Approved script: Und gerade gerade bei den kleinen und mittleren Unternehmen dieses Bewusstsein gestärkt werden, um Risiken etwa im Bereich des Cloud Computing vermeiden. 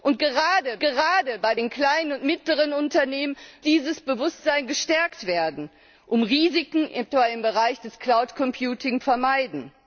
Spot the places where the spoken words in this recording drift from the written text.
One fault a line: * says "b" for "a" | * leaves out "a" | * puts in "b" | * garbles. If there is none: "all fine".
all fine